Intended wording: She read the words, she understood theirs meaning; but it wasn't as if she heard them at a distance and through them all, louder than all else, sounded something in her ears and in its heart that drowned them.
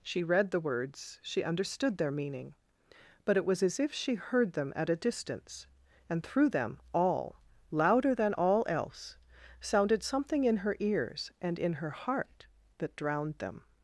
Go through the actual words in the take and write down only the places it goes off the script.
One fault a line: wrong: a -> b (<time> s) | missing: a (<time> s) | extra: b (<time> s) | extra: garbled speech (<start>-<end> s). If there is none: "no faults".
wrong: theirs -> their (2.0 s)
wrong: wasn't -> was (3.5 s)
wrong: its -> her (11.7 s)